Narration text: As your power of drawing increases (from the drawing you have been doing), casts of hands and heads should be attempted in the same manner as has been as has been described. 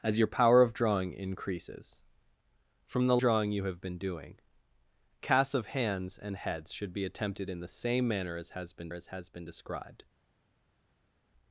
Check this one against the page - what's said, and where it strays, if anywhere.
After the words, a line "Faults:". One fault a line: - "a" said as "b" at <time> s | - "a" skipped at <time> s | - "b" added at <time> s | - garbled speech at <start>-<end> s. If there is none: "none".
As your power of drawing increases (from the drawing you have been doing), casts of hands and heads should be attempted in the same manner as has been as has been described.
Faults:
none